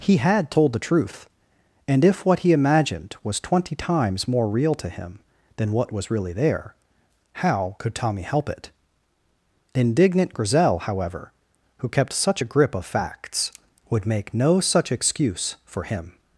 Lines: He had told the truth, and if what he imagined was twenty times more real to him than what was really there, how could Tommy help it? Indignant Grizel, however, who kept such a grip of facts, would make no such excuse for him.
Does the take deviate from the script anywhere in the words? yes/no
no